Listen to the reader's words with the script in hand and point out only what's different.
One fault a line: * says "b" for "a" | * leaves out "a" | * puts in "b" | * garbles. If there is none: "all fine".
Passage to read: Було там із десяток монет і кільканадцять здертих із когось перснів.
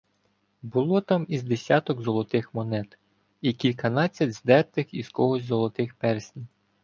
* puts in "золотих"
* puts in "золотих"